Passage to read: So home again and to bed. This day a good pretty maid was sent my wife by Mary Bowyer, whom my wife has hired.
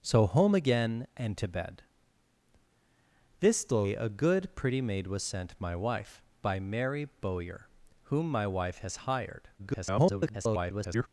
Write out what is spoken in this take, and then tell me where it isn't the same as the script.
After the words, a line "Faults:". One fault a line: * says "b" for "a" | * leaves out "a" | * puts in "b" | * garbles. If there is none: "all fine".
So home again and to bed. This day a good pretty maid was sent my wife by Mary Bowyer, whom my wife has hired. [garbled]
Faults:
* garbles